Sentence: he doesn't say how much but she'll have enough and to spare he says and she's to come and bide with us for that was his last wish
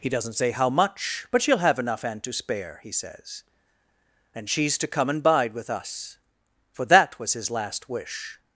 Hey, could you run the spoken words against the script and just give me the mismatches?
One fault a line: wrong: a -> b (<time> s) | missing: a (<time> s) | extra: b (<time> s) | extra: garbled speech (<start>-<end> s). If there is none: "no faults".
no faults